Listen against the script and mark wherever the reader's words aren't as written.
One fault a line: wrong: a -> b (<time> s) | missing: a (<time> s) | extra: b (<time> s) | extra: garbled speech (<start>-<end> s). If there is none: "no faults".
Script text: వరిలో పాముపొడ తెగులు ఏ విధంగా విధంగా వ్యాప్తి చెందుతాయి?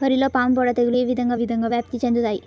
no faults